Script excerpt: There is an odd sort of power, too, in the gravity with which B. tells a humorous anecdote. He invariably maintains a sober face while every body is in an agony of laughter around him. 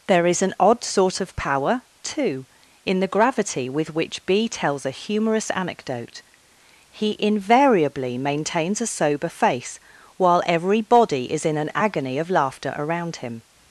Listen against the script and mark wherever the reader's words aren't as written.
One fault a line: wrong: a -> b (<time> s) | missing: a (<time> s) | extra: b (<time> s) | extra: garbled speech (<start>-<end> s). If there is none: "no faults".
no faults